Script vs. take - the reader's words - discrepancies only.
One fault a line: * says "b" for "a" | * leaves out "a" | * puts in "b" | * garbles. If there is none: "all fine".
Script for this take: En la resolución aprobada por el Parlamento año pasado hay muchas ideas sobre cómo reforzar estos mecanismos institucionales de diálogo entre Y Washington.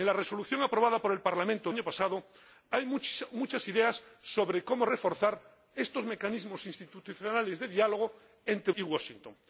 all fine